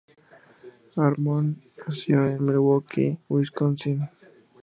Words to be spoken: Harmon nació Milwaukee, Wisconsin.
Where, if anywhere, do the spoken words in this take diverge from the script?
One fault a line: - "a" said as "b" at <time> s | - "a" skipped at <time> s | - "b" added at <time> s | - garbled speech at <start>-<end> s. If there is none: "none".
- "en" added at 2.2 s